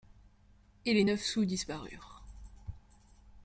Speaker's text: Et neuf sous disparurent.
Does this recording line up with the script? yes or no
no